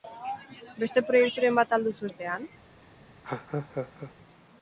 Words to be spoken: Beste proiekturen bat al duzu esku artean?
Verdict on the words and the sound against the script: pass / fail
fail